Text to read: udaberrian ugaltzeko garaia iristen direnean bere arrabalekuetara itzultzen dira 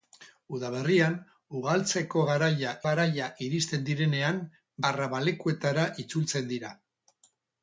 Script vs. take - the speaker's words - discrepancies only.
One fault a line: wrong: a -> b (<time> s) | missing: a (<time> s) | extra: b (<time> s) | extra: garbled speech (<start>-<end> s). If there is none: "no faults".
extra: garaia (2.9 s)
missing: bere (4.4 s)